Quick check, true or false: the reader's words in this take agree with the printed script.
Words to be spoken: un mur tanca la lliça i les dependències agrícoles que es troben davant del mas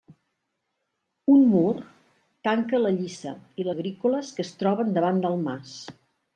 false